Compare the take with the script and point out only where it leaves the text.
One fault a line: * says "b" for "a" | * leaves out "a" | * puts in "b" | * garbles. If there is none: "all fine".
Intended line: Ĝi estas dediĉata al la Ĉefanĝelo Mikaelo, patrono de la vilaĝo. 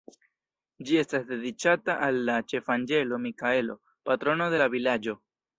all fine